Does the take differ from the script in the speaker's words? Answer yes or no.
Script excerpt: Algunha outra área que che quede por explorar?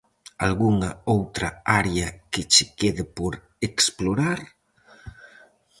no